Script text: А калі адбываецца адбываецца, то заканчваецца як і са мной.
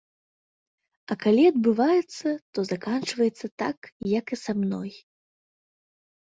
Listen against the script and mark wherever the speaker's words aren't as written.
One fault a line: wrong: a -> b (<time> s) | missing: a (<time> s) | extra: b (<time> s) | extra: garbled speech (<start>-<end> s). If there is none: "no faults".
missing: адбываецца (2.3 s)
extra: так (3.6 s)